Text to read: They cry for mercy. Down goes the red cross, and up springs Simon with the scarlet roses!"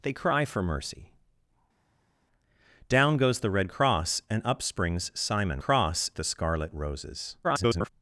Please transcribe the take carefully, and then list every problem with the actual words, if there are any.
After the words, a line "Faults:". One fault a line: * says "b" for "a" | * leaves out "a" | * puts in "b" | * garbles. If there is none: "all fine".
They cry for mercy. Down goes the red cross, and up springs Simon cross the scarlet roses!" [garbled]
Faults:
* says "cross" for "with"
* garbles